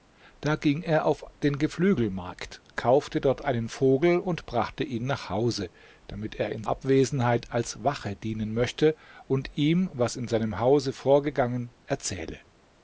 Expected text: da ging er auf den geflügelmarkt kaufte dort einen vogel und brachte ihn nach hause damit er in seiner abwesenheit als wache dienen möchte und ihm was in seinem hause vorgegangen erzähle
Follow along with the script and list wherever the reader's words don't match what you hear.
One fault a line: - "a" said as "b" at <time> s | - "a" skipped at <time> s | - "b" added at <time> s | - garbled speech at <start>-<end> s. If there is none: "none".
- "seiner" skipped at 6.6 s